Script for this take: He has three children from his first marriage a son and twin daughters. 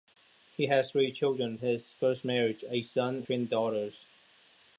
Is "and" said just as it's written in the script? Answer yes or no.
no